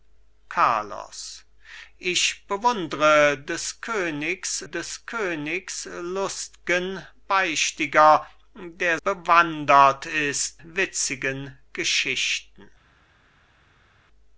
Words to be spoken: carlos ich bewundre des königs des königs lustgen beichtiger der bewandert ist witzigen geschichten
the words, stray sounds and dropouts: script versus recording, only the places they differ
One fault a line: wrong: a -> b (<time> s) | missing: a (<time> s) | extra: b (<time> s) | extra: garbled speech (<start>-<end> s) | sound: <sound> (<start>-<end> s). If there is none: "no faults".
no faults